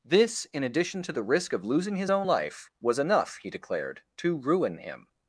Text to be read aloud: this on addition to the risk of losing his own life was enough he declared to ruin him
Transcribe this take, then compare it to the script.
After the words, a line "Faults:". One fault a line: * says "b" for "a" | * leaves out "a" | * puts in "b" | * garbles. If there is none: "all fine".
this in addition to the risk of losing his own life was enough he declared to ruin him
Faults:
* says "in" for "on"